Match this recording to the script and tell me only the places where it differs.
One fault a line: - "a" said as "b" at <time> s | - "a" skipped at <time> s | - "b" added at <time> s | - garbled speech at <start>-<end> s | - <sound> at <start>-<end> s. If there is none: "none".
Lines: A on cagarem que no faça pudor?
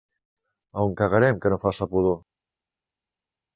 none